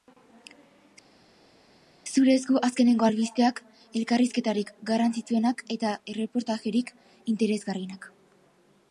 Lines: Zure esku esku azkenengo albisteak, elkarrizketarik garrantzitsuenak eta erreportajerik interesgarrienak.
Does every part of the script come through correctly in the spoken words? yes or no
no